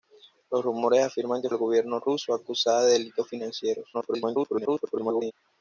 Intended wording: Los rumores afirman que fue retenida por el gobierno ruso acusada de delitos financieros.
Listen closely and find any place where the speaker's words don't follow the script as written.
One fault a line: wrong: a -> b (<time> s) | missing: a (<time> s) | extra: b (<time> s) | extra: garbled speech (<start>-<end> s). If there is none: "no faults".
missing: fue retenida por (1.5 s)
extra: garbled speech (3.9-5.3 s)